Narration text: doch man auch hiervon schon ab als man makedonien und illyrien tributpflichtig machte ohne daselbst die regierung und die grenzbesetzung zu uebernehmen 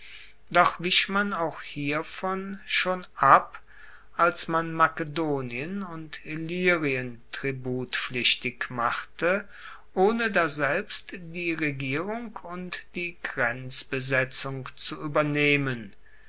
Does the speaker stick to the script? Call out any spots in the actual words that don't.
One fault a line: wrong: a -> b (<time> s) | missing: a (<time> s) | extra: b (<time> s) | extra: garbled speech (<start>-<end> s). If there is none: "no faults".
extra: wich (0.8 s)